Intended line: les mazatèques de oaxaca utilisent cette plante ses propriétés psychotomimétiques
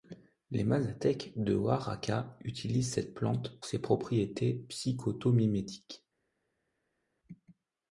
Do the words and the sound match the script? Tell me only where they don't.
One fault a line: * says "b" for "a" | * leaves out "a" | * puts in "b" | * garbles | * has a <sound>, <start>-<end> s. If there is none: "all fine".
all fine